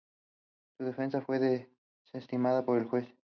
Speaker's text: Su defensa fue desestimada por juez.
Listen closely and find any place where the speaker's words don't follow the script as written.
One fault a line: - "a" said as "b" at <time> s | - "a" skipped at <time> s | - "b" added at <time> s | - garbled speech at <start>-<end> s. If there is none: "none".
- "el" added at 2.8 s